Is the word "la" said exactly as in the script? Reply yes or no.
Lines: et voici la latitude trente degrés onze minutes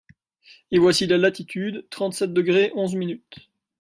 yes